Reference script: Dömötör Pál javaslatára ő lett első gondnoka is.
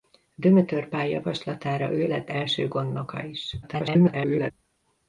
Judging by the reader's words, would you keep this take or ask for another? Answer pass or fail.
fail